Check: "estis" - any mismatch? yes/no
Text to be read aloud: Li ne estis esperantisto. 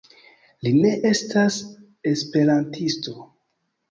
yes